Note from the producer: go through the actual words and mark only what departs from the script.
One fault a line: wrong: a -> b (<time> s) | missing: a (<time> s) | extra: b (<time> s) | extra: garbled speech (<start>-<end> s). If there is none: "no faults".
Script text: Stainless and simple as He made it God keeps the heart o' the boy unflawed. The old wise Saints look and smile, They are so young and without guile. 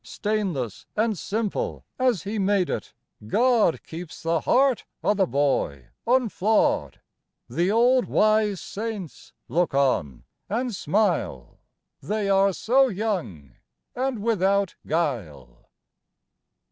extra: on (9.8 s)